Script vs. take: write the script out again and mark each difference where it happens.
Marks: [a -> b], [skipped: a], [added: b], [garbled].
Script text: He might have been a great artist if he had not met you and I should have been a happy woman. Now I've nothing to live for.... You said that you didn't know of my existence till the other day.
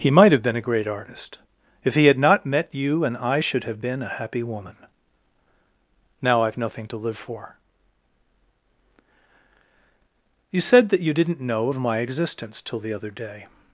He might have been a great artist if he had not met you and I should have been a happy woman. Now I've nothing to live for.... You said that you didn't know of my existence till the other day.